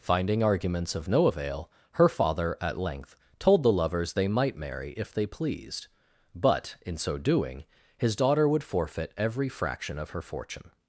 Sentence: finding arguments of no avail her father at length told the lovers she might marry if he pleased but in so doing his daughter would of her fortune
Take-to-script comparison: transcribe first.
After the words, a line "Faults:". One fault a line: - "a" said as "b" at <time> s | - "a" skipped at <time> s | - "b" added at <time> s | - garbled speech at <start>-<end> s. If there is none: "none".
finding arguments of no avail her father at length told the lovers they might marry if they pleased but in so doing his daughter would forfeit every fraction of her fortune
Faults:
- "she" said as "they" at 4.1 s
- "he" said as "they" at 5.1 s
- "forfeit every fraction" added at 8.6 s